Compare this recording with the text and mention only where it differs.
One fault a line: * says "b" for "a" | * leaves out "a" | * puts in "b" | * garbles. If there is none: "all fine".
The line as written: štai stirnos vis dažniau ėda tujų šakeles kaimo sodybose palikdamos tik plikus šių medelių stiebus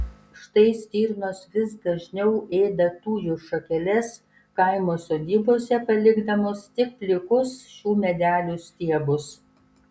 all fine